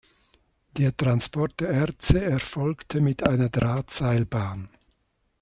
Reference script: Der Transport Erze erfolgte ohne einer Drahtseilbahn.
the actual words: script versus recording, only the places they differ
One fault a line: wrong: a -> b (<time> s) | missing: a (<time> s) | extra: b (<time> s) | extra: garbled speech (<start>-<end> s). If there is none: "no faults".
extra: der (1.6 s)
wrong: ohne -> mit (3.0 s)